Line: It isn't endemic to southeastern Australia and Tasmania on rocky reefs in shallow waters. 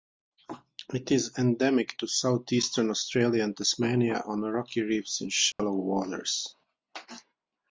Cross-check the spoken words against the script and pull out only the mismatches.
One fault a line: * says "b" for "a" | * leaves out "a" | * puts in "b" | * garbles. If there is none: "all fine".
* says "is" for "isn't"